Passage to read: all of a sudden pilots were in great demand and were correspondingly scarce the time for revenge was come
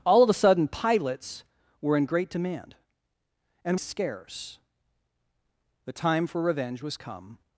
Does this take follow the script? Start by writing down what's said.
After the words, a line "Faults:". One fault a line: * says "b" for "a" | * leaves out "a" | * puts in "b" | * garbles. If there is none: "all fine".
all of a sudden pilots were in great demand and scarce the time for revenge was come
Faults:
* leaves out "were correspondingly"